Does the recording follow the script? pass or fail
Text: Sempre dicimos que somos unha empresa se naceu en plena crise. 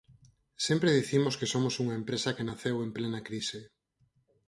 fail